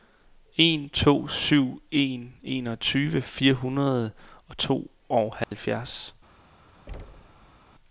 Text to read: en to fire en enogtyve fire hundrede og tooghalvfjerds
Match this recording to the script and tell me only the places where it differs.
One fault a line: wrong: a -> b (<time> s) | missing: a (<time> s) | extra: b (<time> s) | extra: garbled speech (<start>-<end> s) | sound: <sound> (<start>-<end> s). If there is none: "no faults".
wrong: fire -> syv (1.3 s)
sound: dropout (5.4-5.5 s)
sound: thud (6.9-7.6 s)